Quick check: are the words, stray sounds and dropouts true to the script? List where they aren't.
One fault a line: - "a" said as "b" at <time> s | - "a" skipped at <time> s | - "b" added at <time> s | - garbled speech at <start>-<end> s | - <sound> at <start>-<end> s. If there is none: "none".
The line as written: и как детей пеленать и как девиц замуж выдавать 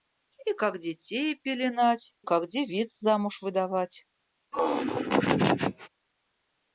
- "и" skipped at 2.1 s
- laugh at 4.5-5.9 s